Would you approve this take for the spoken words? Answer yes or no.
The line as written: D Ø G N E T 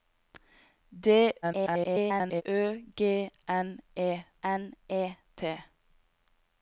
no